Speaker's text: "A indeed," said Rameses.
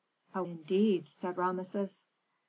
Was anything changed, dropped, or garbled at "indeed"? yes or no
no